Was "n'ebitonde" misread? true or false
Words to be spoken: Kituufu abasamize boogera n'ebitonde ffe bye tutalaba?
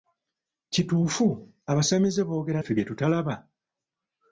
true